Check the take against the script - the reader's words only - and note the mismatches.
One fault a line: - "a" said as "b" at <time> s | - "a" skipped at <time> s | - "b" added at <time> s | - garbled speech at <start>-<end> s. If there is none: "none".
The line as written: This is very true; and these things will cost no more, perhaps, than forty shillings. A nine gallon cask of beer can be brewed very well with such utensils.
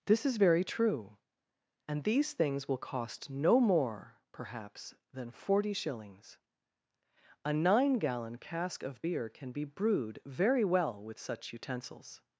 none